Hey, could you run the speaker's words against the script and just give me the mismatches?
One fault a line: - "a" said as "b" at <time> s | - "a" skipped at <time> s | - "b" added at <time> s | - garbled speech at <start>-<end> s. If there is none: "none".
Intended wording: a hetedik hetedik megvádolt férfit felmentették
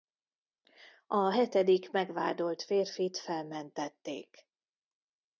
- "hetedik" skipped at 1.9 s